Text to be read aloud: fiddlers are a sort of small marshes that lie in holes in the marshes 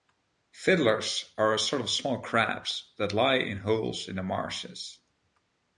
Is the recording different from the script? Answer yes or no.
yes